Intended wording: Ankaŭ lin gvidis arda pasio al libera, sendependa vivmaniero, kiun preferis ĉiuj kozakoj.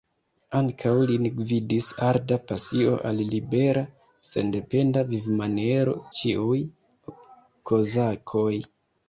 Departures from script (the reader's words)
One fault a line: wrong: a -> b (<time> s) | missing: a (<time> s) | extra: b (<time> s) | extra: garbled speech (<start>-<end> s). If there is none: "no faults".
missing: kiun preferis (6.0 s)